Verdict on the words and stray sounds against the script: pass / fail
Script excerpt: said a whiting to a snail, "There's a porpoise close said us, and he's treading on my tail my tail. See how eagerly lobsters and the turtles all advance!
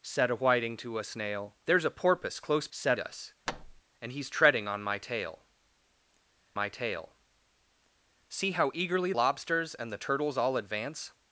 fail